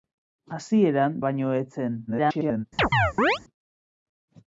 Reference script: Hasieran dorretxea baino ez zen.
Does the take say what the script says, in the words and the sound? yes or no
no